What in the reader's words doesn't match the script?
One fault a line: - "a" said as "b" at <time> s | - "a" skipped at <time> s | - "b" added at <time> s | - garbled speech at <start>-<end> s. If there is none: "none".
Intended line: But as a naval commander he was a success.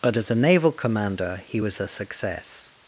none